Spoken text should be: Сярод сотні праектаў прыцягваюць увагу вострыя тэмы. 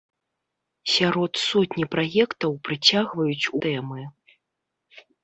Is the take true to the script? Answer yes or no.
no